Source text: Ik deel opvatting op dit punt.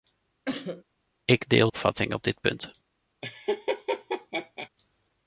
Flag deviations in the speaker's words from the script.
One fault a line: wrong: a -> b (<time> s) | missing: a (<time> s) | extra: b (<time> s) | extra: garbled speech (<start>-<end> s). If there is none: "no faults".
no faults